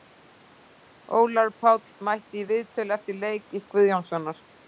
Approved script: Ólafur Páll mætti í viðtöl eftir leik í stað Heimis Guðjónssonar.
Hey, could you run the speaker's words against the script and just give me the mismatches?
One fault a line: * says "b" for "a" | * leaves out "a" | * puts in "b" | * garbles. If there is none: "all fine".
* leaves out "stað Heimis"